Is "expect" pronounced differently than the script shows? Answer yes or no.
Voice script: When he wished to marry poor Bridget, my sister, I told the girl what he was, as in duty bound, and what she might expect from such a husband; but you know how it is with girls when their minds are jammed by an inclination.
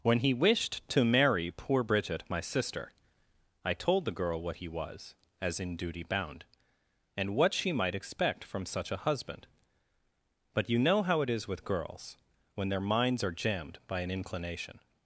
no